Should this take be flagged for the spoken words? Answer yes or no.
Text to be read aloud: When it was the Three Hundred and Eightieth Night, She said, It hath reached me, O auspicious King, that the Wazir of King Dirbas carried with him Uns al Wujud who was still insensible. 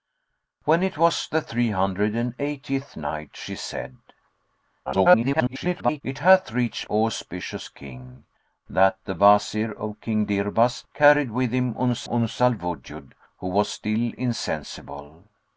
yes